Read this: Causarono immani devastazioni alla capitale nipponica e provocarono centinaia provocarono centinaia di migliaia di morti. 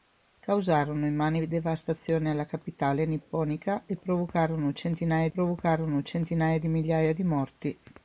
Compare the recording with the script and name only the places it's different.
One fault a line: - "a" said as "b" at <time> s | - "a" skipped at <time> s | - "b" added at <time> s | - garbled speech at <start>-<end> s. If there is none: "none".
none